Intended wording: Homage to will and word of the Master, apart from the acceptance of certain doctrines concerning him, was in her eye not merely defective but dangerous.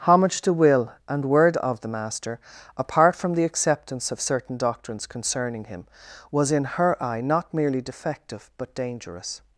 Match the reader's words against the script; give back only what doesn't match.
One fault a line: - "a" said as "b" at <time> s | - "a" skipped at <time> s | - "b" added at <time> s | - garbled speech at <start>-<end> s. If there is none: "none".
none